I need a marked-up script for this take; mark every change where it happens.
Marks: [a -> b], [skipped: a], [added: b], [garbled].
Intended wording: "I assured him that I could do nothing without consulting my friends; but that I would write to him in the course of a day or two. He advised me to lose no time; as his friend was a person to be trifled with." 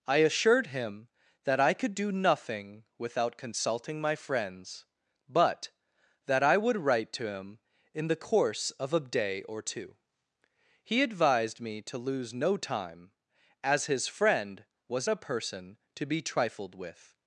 "I assured him that I could do nothing without consulting my friends; but that I would write to him in the course of a day or two. He advised me to lose no time; as his friend was a person to be trifled with."